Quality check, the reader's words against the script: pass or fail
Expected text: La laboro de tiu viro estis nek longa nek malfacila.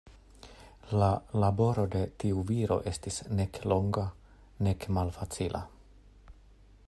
pass